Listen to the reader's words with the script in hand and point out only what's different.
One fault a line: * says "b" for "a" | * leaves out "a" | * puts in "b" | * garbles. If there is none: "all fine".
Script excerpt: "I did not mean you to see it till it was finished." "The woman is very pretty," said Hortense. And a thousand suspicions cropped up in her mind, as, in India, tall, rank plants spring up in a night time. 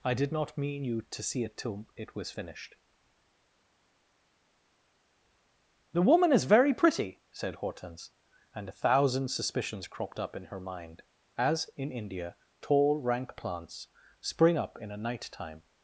all fine